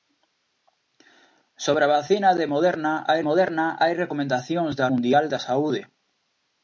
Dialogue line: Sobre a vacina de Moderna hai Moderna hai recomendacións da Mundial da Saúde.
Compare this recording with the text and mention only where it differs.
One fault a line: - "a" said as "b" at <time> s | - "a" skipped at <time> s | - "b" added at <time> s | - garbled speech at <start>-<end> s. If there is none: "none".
none